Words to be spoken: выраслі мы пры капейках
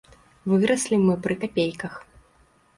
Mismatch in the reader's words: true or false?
false